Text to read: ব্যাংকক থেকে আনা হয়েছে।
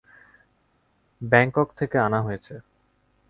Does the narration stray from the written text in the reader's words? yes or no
no